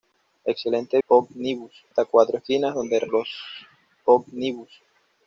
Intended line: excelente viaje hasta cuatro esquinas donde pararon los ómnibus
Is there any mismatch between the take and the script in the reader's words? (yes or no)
yes